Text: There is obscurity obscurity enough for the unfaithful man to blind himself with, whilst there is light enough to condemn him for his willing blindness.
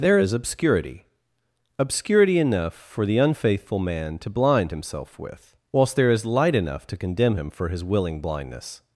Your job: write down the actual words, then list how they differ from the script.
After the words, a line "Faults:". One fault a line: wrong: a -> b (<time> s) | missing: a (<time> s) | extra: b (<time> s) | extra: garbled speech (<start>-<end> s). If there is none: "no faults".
There is obscurity obscurity enough for the unfaithful man to blind himself with, whilst there is light enough to condemn him for his willing blindness.
Faults:
no faults